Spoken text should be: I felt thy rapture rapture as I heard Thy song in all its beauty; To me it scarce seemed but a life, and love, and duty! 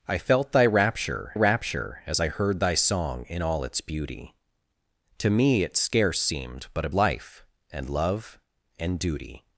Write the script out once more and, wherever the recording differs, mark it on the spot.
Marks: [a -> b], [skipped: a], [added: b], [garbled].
I felt thy rapture rapture as I heard Thy song in all its beauty; To me it scarce seemed but a life, and love, and duty!